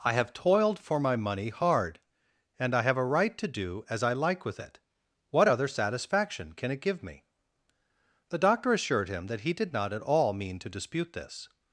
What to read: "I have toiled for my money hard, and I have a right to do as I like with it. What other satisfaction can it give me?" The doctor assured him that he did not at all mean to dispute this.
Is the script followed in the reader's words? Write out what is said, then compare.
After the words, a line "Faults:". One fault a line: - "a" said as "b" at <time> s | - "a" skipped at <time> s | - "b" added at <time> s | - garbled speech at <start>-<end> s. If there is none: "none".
"I have toiled for my money hard, and I have a right to do as I like with it. What other satisfaction can it give me?" The doctor assured him that he did not at all mean to dispute this.
Faults:
none